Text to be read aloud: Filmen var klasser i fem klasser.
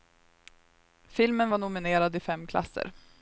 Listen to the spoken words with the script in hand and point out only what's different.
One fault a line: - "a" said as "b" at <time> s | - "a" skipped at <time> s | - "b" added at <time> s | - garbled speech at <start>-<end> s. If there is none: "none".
- "klasser" said as "nominerad" at 1.6 s